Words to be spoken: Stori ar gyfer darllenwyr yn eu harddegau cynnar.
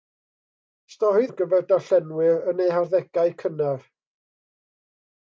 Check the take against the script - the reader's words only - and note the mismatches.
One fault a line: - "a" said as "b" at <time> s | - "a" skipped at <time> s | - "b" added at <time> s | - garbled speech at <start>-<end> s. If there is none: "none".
none